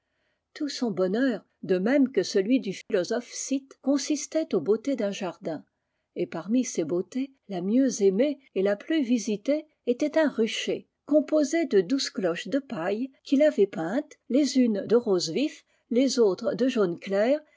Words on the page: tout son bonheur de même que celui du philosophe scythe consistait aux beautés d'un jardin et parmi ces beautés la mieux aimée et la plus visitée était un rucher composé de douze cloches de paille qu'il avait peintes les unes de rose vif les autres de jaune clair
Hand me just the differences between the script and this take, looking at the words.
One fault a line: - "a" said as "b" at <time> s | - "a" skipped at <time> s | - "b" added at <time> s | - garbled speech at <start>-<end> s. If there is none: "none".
none